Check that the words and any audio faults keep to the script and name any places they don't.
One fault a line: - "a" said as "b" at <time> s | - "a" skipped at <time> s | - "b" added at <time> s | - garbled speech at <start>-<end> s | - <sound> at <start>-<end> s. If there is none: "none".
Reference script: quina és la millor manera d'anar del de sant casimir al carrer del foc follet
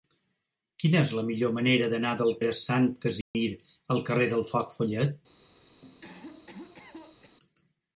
- dropout at 3.2-3.3 s
- cough at 5.8-7.4 s